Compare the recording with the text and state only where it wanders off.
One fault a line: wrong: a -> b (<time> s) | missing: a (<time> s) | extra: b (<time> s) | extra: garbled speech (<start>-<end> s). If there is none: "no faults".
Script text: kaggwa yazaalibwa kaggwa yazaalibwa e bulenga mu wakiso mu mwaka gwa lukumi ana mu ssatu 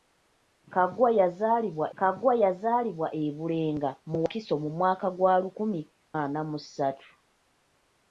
no faults